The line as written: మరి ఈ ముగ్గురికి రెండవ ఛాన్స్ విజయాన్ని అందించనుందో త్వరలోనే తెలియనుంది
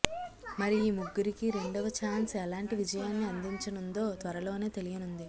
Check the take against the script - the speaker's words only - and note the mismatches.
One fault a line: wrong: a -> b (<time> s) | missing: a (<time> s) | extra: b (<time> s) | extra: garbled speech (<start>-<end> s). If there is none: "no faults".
extra: ఎలాంటి (2.4 s)